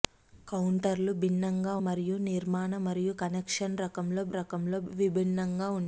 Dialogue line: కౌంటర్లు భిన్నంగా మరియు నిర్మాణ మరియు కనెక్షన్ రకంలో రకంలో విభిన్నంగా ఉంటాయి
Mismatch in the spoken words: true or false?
false